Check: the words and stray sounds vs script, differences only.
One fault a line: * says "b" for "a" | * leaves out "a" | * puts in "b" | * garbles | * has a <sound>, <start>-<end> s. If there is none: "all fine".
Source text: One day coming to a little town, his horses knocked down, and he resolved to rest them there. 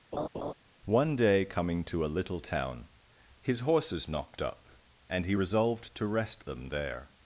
* has a laugh, 0.1-0.5 s
* says "up" for "down"